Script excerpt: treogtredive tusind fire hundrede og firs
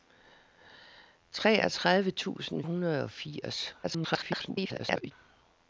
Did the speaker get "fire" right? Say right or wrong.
wrong